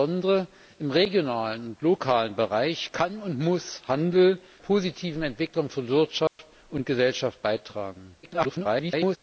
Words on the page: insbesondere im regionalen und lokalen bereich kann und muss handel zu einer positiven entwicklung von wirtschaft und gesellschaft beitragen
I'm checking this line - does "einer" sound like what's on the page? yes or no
no